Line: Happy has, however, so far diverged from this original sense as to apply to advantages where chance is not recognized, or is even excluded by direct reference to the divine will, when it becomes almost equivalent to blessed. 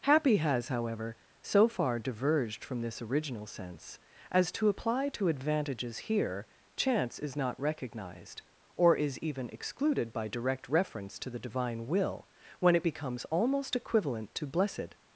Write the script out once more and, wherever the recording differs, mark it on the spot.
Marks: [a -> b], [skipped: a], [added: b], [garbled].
Happy has, however, so far diverged from this original sense as to apply to advantages [where -> here] chance is not recognized, or is even excluded by direct reference to the divine will, when it becomes almost equivalent to blessed.